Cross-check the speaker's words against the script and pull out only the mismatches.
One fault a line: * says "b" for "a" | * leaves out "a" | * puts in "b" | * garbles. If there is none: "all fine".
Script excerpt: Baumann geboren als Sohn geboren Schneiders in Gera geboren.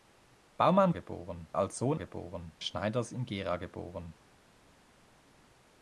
all fine